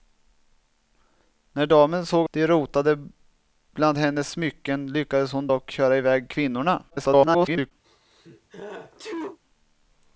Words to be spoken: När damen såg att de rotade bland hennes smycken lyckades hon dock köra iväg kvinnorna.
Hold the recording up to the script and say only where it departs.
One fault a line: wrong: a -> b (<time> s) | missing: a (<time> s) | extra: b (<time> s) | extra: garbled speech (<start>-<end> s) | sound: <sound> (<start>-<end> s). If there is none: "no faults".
missing: att (2.3 s)
extra: garbled speech (6.9-7.7 s)
sound: sneeze (7.8-9.4 s)